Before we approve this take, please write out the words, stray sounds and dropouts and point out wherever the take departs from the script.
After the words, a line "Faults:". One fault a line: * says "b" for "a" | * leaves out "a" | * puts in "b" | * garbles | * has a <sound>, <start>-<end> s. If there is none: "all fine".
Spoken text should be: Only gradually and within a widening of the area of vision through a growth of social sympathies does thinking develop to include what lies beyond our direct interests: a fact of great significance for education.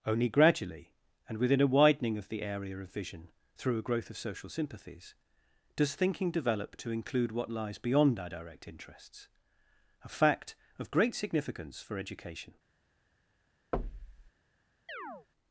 Only gradually and within a widening of the area of vision through a growth of social sympathies does thinking develop to include what lies beyond our direct interests: a fact of great significance for education.
Faults:
* has a thud, 13.7-14.3 s
* has a chirp, 14.9-15.3 s